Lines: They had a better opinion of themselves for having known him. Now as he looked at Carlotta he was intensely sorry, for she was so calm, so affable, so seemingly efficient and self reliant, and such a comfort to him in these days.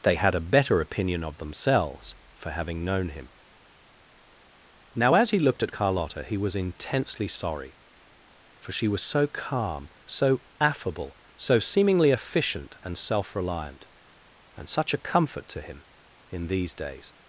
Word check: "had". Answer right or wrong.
right